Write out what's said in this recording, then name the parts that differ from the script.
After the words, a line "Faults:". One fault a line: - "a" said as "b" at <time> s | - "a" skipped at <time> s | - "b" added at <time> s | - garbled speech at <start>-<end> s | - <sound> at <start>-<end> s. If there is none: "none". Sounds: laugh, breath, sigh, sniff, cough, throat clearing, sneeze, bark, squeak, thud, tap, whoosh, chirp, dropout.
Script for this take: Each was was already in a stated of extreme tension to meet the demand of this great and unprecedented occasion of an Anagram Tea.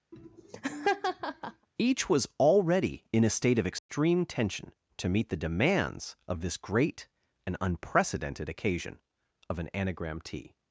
Each was already in a state of extreme tension to meet the demands of this great and unprecedented occasion of an Anagram Tea.
Faults:
- laugh at 0.1-1.7 s
- "was" skipped at 2.3 s
- "stated" said as "state" at 3.3 s
- dropout at 3.8-3.9 s
- "demand" said as "demands" at 5.4 s